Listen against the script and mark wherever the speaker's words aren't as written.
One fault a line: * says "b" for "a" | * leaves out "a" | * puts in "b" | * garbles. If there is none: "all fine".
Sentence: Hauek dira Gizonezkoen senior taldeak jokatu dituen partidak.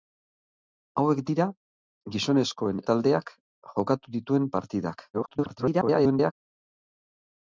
* leaves out "senior"
* garbles